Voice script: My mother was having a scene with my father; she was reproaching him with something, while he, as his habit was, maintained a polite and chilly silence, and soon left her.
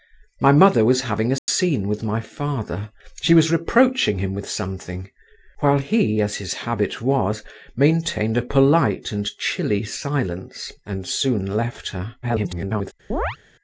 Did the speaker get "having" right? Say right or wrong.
right